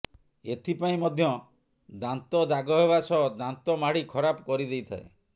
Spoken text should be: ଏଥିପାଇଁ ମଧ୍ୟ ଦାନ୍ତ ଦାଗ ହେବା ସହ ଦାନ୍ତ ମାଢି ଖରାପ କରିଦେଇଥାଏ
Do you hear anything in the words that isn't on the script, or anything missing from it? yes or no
no